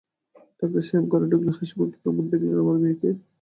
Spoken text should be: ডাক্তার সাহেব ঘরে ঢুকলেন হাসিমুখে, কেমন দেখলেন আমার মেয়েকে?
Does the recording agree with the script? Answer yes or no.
yes